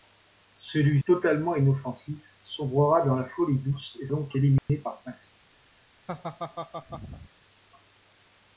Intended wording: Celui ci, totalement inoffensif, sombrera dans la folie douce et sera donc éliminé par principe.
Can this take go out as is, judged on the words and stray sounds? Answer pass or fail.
fail